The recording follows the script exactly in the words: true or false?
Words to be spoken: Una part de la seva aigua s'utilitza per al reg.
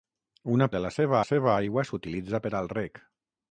false